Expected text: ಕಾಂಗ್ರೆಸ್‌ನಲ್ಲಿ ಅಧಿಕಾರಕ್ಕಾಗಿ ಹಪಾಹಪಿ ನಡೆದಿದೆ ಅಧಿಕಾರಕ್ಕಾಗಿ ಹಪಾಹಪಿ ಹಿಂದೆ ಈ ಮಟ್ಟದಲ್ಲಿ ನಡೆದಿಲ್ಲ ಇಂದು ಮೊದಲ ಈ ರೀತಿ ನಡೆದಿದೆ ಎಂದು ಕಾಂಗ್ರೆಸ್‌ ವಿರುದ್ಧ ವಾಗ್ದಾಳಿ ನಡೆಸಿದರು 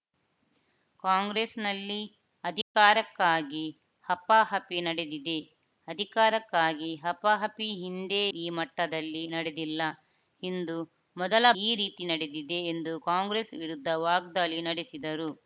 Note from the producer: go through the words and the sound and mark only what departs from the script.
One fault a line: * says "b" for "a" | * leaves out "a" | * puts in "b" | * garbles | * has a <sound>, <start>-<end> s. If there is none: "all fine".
* has a dropout, 2.6-2.7 s